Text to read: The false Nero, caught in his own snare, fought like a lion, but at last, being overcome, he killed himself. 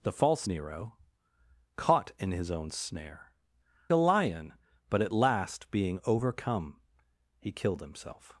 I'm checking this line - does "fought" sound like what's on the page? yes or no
no